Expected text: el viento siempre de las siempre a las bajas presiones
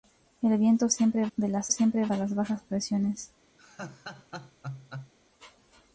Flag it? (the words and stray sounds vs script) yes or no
yes